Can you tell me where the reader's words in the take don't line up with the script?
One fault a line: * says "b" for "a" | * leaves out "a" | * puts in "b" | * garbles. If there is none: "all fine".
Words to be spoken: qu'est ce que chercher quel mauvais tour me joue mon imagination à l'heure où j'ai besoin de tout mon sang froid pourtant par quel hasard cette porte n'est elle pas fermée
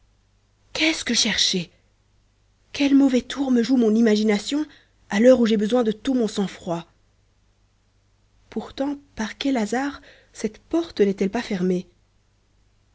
all fine